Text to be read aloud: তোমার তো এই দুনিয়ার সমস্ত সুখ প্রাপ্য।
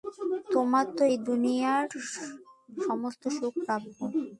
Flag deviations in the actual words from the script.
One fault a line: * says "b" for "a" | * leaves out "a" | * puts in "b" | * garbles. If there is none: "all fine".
all fine